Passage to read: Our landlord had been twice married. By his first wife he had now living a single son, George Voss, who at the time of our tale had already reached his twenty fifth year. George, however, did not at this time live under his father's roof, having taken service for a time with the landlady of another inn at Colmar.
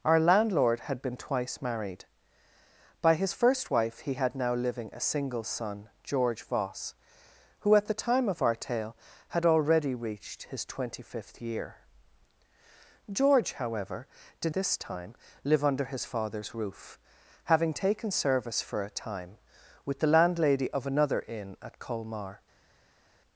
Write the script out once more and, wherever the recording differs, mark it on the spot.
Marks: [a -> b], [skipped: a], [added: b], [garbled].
Our landlord had been twice married. By his first wife he had now living a single son, George Voss, who at the time of our tale had already reached his twenty fifth year. George, however, did [skipped: not at] this time live under his father's roof, having taken service for a time with the landlady of another inn at Colmar.